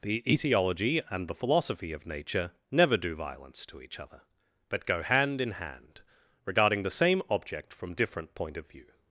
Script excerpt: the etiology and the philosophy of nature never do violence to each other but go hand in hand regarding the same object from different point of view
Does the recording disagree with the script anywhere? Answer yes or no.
no